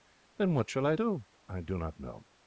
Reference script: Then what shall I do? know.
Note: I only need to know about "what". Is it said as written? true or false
true